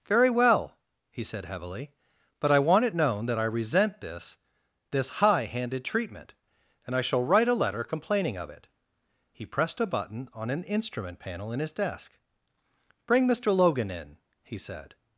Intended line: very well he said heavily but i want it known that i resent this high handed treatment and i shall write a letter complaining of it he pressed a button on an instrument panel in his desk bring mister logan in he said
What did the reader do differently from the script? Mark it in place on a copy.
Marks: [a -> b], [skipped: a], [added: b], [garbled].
very well he said heavily but i want it known that i resent this [added: this] high handed treatment and i shall write a letter complaining of it he pressed a button on an instrument panel in his desk bring mister logan in he said